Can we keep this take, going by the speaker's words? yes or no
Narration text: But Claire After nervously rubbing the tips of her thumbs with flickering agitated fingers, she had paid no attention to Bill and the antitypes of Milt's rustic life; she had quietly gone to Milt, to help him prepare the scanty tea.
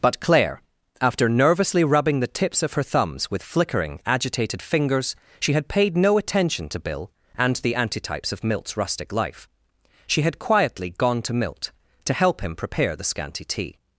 yes